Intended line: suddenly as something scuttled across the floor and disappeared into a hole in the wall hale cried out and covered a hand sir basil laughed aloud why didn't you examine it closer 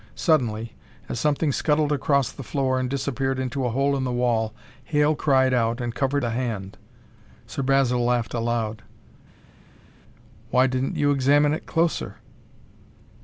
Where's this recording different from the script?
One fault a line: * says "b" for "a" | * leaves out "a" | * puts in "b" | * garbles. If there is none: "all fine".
all fine